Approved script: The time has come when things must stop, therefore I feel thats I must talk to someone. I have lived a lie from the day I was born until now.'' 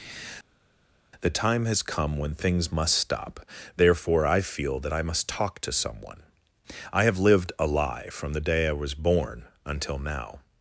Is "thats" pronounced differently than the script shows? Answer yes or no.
yes